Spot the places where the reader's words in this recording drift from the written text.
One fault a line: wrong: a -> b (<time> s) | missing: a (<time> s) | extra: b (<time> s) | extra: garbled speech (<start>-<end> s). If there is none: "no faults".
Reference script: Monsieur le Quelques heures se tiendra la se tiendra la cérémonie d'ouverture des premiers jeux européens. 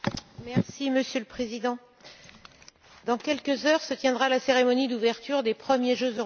extra: Président dans (1.2 s)
missing: se tiendra la (4.4 s)